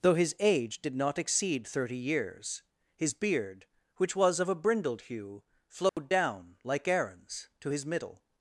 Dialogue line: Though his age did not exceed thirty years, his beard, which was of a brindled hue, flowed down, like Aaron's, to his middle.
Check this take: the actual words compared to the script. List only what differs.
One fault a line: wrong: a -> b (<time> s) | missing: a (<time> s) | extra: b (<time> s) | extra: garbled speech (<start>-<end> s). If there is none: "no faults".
no faults